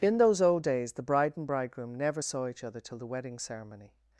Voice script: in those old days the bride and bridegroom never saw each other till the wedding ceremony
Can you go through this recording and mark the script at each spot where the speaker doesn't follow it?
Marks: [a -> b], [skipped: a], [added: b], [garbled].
in those old days the bride and bridegroom never saw each other till the wedding ceremony